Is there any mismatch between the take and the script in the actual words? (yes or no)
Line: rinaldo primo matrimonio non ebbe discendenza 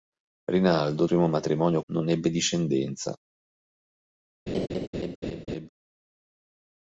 no